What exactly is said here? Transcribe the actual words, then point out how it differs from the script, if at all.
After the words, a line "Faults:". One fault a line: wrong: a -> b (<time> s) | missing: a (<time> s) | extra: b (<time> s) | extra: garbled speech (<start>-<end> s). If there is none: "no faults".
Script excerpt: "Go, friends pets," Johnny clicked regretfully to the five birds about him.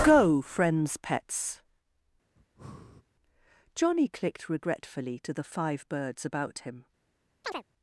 "Go, friends pets," Johnny clicked regretfully to the five birds about him.
Faults:
no faults